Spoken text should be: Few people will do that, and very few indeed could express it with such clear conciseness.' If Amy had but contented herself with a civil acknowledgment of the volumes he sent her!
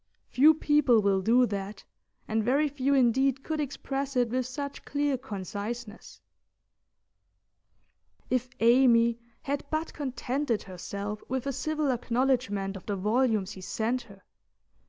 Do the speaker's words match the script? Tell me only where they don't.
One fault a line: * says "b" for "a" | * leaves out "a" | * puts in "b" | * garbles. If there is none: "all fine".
all fine